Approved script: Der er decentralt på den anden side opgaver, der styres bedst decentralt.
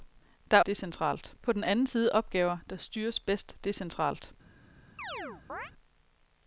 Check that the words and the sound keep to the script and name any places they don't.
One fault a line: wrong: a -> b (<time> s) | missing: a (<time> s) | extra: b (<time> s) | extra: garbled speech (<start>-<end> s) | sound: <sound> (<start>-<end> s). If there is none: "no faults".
sound: chirp (5.0-5.7 s)